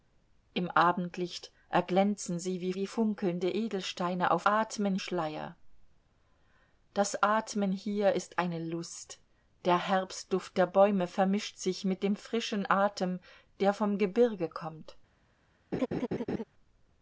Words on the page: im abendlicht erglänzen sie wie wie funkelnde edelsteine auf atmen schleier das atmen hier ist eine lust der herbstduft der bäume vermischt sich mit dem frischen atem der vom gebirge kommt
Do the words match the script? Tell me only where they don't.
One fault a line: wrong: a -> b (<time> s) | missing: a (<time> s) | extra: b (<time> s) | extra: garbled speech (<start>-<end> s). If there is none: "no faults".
no faults